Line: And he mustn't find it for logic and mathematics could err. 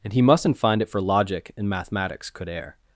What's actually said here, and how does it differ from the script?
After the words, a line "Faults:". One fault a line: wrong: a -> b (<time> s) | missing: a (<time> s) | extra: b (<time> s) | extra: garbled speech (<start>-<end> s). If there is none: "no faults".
And he mustn't find it for logic and mathematics could err.
Faults:
no faults